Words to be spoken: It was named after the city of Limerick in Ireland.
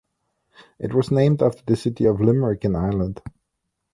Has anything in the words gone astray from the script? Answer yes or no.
no